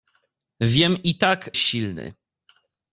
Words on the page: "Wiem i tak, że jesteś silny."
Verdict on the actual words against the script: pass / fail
fail